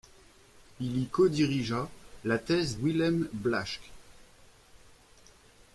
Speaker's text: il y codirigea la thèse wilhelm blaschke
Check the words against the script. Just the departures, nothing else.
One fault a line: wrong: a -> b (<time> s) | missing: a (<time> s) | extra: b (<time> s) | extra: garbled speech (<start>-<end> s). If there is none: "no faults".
no faults